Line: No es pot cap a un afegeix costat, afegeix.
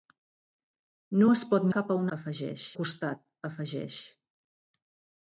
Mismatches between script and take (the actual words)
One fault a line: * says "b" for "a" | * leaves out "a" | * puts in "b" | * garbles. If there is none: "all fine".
all fine